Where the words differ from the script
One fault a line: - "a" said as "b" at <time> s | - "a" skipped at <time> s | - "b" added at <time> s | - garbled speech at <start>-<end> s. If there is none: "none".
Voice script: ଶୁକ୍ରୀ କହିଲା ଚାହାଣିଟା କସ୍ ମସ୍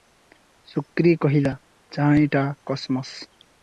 none